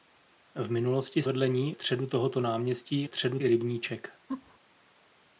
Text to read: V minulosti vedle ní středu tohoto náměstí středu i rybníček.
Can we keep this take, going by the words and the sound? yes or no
no